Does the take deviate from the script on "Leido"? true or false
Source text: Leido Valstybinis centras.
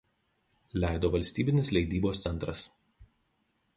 false